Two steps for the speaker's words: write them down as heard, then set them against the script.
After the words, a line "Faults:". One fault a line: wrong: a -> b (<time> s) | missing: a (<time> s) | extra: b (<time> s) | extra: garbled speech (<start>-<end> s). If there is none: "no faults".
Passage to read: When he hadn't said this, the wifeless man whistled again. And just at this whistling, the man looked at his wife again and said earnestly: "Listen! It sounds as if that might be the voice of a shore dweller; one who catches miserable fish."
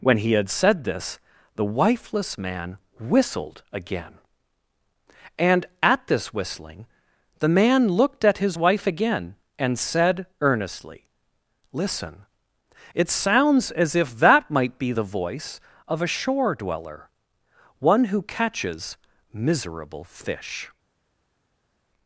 When he had said this, the wifeless man whistled again. And at this whistling, the man looked at his wife again and said earnestly: "Listen! It sounds as if that might be the voice of a shore dweller; one who catches miserable fish."
Faults:
wrong: hadn't -> had (0.3 s)
missing: just (5.7 s)